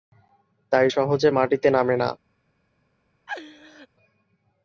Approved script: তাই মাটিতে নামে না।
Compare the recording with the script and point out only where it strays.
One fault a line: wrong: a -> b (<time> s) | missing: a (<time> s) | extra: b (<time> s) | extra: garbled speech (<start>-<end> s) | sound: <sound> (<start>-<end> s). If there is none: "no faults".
extra: সহজে (0.9 s)
sound: laugh (3.3-3.9 s)